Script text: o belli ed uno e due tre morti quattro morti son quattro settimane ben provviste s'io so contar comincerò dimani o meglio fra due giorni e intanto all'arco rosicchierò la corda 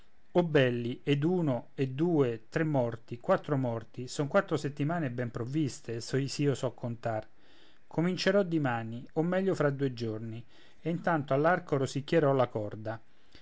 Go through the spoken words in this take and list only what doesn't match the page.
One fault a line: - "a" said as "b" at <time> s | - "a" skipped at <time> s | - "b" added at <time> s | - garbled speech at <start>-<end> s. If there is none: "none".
none